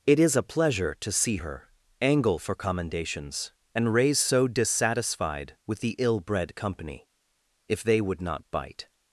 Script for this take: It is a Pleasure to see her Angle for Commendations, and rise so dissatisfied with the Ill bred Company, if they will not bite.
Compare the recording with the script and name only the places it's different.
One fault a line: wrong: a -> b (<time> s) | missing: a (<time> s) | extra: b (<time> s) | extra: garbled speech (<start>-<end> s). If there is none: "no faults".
wrong: rise -> raise (3.9 s)
wrong: will -> would (8.0 s)